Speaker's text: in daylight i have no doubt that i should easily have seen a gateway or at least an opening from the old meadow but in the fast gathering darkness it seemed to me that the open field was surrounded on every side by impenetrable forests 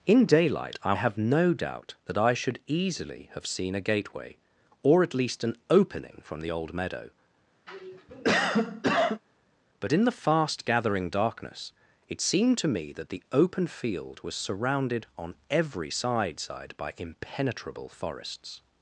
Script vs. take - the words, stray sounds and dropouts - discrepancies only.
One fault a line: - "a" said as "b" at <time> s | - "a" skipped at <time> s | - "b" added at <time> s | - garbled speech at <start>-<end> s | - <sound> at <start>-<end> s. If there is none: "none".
- cough at 7.7-9.2 s
- "side" added at 16.4 s